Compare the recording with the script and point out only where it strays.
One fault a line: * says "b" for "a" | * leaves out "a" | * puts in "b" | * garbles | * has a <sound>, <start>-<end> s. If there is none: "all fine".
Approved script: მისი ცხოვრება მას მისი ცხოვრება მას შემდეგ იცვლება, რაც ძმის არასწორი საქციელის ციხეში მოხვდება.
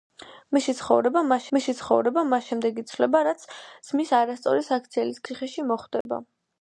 * has a dropout, 6.0-6.1 s